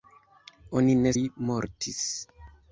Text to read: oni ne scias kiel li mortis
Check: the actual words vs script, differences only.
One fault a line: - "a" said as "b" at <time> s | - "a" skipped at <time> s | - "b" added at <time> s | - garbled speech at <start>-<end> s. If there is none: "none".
- "scias kiel" skipped at 1.1 s